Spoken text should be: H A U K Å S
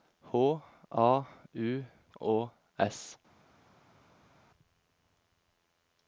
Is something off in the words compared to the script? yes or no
yes